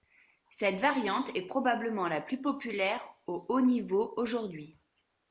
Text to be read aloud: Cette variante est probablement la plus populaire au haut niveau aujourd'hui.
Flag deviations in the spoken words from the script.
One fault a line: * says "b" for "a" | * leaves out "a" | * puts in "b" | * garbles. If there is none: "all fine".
all fine